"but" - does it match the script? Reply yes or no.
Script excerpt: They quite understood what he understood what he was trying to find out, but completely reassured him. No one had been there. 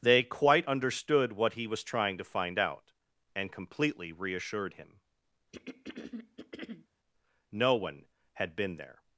no